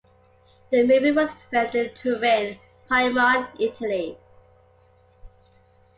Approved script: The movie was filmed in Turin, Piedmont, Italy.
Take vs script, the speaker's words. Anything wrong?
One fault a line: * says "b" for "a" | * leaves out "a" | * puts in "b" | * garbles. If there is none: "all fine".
all fine